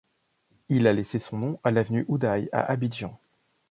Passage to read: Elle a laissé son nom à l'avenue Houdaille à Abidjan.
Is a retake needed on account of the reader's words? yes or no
yes